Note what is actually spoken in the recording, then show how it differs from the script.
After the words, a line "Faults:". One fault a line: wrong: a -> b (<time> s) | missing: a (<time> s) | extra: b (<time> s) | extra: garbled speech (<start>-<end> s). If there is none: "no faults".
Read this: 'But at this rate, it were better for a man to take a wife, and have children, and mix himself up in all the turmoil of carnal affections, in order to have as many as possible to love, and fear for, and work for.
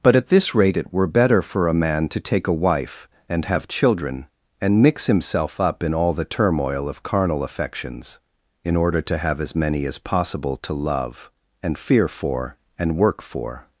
'But at this rate, it were better for a man to take a wife, and have children, and mix himself up in all the turmoil of carnal affections, in order to have as many as possible to love, and fear for, and work for.
Faults:
no faults